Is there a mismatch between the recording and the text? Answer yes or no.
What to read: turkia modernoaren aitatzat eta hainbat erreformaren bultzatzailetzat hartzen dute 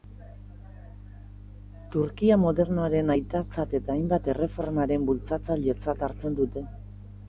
no